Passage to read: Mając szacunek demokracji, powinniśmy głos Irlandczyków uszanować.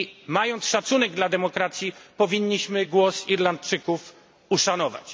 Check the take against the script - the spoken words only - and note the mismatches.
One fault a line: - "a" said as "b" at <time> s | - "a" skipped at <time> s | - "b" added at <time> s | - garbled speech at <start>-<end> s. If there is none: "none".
- "dla" added at 1.1 s